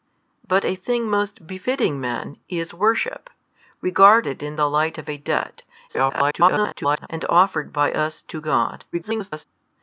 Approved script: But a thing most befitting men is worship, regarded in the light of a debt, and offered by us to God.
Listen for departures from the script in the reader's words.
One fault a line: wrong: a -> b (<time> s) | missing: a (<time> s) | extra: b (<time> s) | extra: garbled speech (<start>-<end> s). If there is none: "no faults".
extra: garbled speech (5.9-7.1 s)
extra: garbled speech (8.9-9.5 s)